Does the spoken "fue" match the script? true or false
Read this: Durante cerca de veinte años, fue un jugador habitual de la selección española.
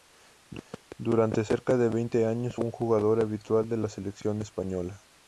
false